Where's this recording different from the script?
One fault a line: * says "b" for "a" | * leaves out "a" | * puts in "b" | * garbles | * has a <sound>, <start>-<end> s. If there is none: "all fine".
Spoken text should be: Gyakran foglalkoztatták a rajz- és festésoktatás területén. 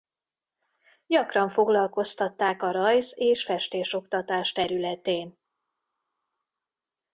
all fine